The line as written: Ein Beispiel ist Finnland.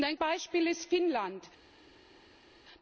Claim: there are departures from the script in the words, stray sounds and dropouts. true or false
false